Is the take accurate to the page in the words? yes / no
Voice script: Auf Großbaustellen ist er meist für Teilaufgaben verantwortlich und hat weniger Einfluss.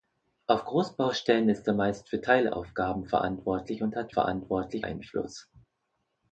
no